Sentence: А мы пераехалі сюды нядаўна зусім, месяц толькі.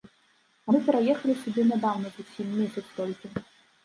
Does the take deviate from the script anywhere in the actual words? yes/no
no